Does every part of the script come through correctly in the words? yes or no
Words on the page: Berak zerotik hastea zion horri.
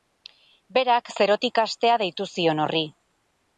no